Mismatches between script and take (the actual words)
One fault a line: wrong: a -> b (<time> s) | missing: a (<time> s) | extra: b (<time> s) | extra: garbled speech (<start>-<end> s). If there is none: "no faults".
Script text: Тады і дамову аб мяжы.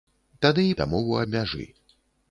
no faults